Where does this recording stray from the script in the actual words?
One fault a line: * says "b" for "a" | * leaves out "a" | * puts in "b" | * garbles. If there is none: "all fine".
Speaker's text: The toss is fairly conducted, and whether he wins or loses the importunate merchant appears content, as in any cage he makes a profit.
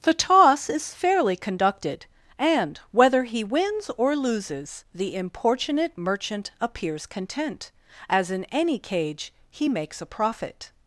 all fine